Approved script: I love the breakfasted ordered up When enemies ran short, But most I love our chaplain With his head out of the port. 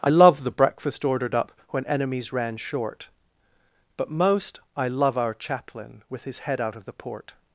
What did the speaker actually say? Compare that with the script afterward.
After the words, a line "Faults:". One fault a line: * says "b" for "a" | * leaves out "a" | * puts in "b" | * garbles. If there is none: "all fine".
I love the breakfast ordered up When enemies ran short, But most I love our chaplain With his head out of the port.
Faults:
* says "breakfast" for "breakfasted"